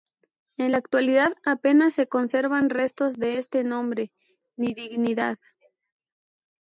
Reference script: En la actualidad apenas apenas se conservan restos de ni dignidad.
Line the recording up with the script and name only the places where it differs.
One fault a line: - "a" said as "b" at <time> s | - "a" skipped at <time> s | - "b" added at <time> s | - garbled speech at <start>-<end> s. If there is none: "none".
- "apenas" skipped at 1.9 s
- "este nombre" added at 3.4 s